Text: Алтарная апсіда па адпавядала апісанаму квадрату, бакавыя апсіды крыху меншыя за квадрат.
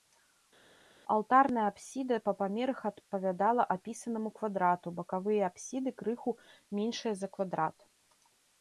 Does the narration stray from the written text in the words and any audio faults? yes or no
yes